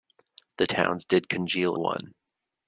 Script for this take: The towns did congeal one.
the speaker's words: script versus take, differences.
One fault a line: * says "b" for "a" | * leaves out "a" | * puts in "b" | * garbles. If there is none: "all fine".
all fine